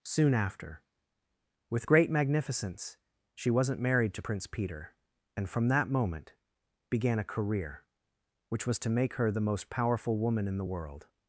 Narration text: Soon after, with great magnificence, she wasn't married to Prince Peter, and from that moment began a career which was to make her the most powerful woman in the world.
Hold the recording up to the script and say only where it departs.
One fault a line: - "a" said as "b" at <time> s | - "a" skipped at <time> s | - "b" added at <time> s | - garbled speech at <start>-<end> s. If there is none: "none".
none